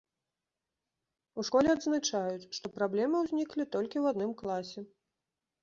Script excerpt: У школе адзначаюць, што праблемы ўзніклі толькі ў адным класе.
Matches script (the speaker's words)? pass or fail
pass